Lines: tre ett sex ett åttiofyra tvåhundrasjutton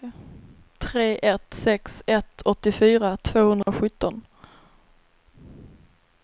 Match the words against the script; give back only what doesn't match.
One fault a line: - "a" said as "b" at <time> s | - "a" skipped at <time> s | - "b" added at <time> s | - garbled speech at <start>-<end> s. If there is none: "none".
none